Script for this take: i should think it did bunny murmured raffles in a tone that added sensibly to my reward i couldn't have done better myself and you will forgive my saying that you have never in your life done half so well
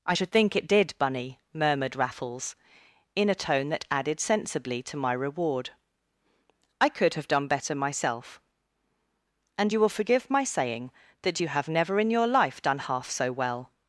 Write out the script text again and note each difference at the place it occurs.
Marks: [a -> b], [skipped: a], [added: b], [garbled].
i should think it did bunny murmured raffles in a tone that added sensibly to my reward i [couldn't -> could] have done better myself and you will forgive my saying that you have never in your life done half so well